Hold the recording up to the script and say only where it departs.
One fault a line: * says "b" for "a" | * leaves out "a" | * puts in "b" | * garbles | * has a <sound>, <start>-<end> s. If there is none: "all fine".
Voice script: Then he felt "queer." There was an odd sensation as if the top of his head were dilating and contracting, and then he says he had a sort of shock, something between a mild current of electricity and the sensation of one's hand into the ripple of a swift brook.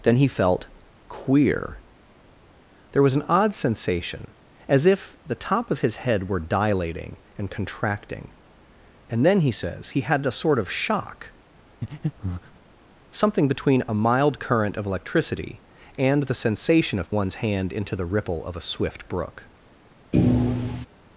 * has a breath, 11.8-12.6 s
* has a thud, 20.1-20.9 s